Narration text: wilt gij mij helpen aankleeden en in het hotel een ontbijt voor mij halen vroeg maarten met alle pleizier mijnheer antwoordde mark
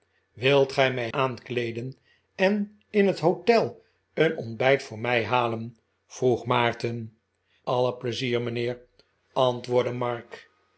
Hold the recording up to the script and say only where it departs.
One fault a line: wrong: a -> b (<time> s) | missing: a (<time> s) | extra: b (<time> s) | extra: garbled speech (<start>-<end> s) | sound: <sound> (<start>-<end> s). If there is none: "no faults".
missing: helpen (1.1 s)
missing: met (7.2 s)